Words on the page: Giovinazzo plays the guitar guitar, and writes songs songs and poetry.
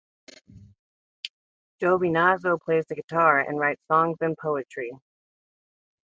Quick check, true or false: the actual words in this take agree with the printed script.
false